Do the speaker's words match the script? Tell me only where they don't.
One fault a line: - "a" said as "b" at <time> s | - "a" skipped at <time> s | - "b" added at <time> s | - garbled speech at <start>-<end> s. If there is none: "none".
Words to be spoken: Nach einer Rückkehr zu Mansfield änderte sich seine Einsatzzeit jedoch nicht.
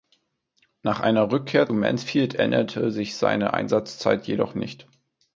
- "zu" skipped at 1.7 s